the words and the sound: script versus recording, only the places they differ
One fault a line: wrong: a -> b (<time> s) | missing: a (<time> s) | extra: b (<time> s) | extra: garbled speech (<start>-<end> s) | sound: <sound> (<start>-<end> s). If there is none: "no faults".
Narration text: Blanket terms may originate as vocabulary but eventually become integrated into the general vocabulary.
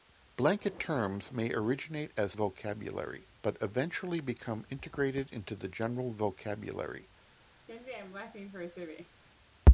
sound: laugh (7.7-9.2 s)